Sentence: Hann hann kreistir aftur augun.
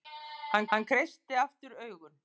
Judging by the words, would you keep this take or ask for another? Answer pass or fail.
pass